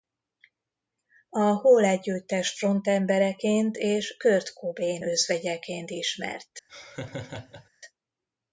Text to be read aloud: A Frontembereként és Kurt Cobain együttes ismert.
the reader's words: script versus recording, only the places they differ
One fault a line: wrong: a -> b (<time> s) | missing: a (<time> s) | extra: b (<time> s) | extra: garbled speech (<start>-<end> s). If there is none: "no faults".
extra: Hole együttes (1.4 s)
wrong: együttes -> özvegyeként (5.0 s)